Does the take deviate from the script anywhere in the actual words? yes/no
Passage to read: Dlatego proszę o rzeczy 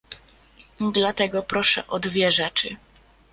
yes